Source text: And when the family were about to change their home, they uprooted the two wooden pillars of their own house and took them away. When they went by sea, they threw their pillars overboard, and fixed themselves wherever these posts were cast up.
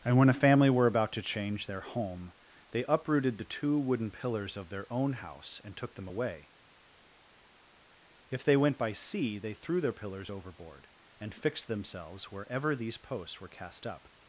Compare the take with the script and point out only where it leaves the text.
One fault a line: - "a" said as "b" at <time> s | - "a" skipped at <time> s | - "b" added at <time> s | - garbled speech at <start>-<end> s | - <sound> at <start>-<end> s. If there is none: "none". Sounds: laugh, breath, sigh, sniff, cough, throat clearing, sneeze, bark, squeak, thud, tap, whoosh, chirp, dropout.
- "the" said as "a" at 0.3 s
- "When" said as "If" at 8.3 s